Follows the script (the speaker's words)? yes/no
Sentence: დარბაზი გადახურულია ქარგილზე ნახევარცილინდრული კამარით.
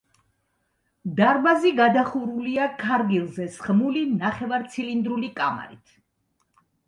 no